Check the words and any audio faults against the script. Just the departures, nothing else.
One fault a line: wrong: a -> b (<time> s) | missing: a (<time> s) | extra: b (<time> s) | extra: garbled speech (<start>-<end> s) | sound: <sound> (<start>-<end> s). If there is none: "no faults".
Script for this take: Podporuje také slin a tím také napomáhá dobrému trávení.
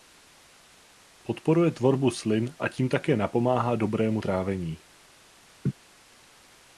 wrong: také -> tvorbu (1.7 s)
sound: laugh (5.6-5.7 s)